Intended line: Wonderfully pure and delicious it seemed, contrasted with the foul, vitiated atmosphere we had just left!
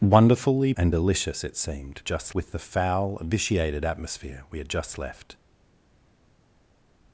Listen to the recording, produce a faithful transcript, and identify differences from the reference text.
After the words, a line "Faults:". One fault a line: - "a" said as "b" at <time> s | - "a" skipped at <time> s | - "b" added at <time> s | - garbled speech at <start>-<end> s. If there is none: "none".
Wonderfully and delicious it seemed, just with the foul, vitiated atmosphere we had just left!
Faults:
- "pure" skipped at 0.7 s
- "contrasted" said as "just" at 2.0 s